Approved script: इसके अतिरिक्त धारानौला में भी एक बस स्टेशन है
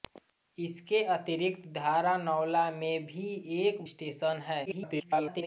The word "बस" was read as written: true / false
false